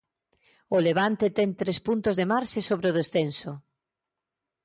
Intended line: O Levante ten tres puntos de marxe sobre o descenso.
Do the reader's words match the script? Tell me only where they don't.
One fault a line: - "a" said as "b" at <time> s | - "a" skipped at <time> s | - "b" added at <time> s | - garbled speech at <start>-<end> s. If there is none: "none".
none